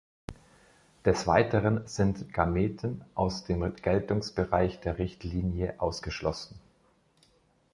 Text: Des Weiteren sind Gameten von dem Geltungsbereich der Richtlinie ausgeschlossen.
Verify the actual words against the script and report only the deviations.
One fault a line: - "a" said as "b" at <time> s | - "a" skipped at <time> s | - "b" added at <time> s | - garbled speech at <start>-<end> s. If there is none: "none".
- "von" said as "aus" at 3.1 s